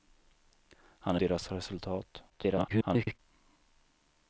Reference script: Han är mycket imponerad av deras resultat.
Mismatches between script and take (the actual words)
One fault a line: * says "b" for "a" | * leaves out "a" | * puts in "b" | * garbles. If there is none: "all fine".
* leaves out "mycket imponerad av"
* garbles